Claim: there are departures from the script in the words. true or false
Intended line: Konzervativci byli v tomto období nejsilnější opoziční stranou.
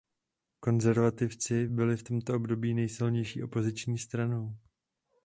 false